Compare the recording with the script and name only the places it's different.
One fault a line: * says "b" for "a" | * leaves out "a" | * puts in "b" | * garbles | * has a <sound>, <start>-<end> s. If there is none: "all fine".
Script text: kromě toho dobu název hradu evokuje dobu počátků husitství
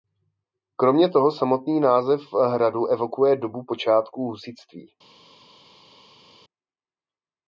* says "samotný" for "dobu"